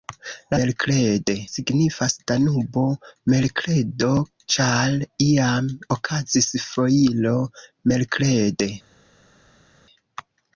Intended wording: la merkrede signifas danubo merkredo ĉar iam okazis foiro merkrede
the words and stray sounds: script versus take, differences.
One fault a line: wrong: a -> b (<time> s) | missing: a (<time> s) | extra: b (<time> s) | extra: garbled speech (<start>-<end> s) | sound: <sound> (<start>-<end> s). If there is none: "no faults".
no faults